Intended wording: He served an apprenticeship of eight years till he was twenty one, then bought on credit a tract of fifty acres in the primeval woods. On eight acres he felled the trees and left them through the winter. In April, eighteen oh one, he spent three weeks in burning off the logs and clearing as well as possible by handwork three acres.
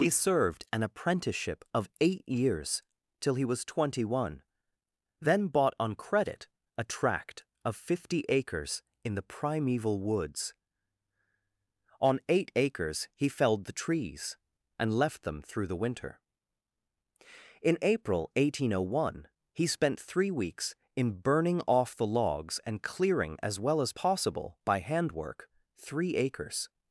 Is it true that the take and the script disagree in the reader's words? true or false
false